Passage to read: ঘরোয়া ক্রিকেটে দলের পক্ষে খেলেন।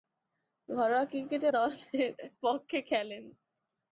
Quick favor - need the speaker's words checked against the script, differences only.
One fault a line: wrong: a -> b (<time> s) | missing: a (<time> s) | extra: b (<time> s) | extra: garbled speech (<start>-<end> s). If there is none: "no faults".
no faults